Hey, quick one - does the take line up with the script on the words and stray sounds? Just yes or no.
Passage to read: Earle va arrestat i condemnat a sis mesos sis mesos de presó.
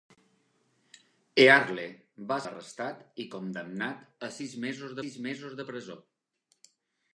yes